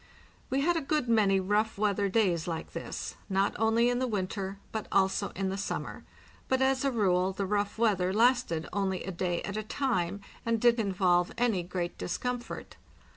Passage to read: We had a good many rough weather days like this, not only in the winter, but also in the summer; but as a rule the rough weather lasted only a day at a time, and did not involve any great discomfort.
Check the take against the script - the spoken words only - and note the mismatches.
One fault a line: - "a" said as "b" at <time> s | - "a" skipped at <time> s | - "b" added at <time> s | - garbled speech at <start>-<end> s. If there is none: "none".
- "not" skipped at 10.8 s